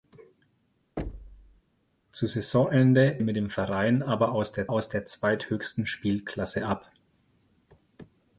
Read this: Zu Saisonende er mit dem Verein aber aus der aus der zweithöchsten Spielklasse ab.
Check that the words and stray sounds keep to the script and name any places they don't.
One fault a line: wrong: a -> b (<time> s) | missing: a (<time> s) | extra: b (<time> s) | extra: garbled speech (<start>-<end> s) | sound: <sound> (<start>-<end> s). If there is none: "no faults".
sound: thud (1.0-1.6 s)